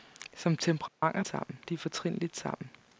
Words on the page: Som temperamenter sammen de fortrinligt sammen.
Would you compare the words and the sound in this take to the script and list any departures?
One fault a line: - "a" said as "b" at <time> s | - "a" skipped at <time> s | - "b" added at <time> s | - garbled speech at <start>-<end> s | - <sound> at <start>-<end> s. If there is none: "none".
- dropout at 0.9-1.0 s